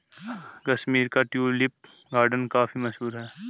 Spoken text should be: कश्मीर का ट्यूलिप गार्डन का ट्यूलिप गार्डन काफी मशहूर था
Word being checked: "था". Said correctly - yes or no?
no